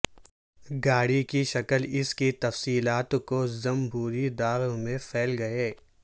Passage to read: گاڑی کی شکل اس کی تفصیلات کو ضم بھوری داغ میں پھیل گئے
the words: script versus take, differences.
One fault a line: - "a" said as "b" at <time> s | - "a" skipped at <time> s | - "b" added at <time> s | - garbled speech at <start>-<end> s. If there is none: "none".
none